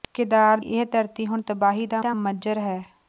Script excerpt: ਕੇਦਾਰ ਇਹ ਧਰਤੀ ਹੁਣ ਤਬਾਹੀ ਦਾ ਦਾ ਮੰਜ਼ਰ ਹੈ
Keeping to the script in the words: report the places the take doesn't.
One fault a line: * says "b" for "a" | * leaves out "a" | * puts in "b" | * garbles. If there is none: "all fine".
all fine